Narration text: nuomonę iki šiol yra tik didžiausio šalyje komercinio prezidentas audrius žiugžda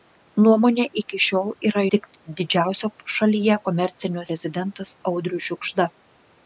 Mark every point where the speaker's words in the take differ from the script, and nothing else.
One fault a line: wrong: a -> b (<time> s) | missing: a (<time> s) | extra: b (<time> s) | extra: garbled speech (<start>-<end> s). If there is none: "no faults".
no faults